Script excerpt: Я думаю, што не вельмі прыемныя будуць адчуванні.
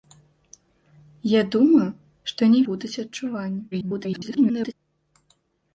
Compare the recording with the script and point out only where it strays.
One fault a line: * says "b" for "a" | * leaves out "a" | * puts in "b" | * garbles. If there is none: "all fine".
* leaves out "вельмі прыемныя"
* garbles